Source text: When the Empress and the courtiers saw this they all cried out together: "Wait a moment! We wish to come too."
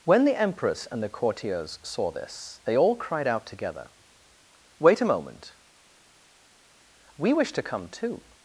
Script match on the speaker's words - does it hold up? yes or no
yes